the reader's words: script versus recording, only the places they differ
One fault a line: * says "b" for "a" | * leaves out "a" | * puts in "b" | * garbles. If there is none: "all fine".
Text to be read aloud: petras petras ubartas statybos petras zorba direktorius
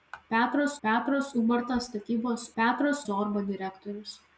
all fine